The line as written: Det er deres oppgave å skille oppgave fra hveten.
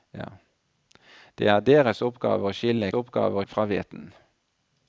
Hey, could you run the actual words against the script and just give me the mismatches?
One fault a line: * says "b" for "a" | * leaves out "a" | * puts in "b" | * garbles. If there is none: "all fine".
all fine